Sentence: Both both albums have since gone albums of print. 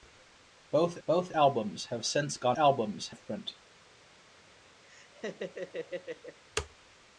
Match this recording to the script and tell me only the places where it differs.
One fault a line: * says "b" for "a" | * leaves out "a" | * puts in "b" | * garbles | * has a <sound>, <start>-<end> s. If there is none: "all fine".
* has a laugh, 4.9-6.4 s